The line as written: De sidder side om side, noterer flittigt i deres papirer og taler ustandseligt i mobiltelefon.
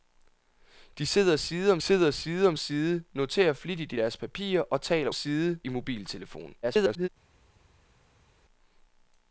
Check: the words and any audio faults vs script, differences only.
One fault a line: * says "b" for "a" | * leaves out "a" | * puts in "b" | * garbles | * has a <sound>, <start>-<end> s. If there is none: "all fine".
* puts in "sidder"
* puts in "om side"
* says "side" for "ustandseligt"
* garbles